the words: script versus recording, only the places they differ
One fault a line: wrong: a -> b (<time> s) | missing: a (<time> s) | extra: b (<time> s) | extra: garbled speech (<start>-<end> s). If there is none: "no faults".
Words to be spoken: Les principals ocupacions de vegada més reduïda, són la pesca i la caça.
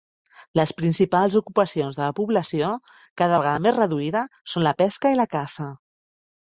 extra: la població cada (2.0 s)